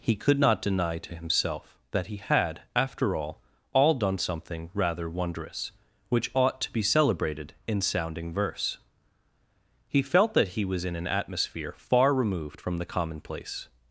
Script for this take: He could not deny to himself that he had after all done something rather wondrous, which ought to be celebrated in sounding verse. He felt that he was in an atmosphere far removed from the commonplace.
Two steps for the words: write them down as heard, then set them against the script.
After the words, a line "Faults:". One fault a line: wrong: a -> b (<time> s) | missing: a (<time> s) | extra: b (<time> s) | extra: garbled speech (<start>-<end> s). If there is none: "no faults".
He could not deny to himself that he had after all all done something rather wondrous, which ought to be celebrated in sounding verse. He felt that he was in an atmosphere far removed from the commonplace.
Faults:
extra: all (3.7 s)